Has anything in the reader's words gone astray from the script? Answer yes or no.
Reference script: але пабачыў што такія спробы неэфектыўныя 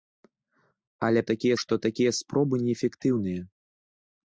yes